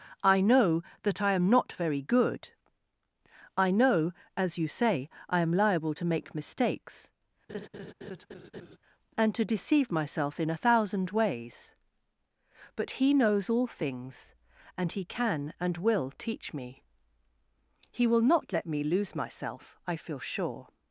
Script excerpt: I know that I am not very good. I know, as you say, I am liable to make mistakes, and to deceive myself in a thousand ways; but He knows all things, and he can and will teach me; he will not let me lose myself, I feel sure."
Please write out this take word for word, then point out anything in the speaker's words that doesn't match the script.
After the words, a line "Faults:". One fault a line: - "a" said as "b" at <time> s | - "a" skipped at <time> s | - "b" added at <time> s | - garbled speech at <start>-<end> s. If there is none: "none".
I know that I am not very good. I know, as you say, I am liable to make mistakes, and to deceive myself in a thousand ways; but He knows all things, and he can and will teach me; he will not let me lose myself, I feel sure."
Faults:
none